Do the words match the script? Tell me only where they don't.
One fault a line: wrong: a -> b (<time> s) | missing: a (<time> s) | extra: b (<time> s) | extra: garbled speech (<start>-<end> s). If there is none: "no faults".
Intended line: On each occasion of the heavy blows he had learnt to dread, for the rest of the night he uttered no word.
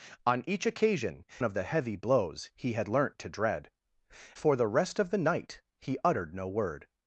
no faults